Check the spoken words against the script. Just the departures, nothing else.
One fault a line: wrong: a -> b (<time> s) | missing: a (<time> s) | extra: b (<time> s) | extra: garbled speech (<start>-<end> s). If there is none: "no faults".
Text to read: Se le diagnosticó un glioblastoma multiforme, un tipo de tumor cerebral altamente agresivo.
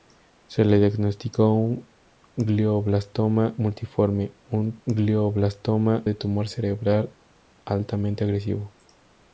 wrong: tipo -> glioblastoma (4.8 s)